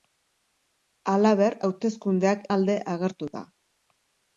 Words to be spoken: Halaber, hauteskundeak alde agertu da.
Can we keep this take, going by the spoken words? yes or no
yes